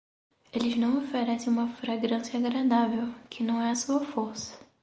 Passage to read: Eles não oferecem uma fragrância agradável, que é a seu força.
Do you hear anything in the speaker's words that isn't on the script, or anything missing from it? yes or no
yes